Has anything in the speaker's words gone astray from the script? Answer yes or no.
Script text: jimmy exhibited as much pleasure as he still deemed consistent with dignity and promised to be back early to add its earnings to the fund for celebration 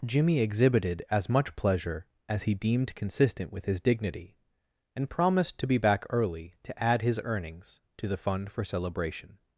yes